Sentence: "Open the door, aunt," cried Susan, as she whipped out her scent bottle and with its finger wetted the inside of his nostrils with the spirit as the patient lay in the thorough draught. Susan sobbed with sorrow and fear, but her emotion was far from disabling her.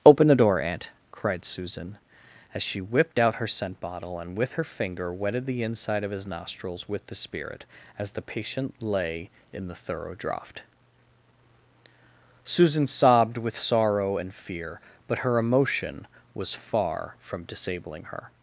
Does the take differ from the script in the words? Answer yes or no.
yes